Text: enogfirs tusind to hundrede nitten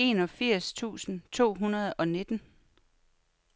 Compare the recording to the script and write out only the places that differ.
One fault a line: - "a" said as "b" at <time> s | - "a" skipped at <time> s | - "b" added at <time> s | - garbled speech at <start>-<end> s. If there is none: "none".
- "og" added at 1.9 s